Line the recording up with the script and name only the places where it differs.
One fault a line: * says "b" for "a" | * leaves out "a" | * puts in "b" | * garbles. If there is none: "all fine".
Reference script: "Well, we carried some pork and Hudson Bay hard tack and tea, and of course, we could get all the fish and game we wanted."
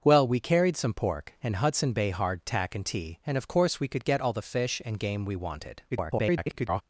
* garbles